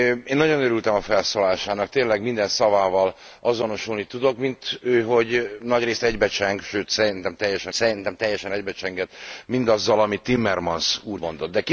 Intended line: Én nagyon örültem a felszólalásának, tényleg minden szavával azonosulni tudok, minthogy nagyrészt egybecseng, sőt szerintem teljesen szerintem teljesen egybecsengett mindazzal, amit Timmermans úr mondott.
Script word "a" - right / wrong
right